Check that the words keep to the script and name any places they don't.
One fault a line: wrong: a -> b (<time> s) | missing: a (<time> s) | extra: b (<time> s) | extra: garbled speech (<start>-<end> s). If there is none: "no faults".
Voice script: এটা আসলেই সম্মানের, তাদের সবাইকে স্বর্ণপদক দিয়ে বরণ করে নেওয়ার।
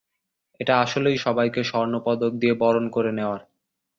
missing: সম্মানের তাদের (1.2 s)